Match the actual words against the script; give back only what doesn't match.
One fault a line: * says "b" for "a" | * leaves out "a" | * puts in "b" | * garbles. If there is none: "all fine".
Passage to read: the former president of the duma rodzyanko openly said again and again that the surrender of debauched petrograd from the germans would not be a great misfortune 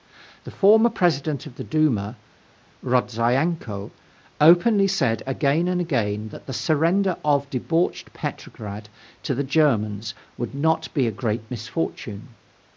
* says "to" for "from"